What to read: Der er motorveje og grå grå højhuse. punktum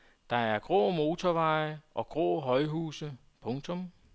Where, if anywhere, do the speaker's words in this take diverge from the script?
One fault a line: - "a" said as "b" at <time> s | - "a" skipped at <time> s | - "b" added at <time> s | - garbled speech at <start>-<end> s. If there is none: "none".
- "grå" added at 0.6 s
- "grå" skipped at 2.4 s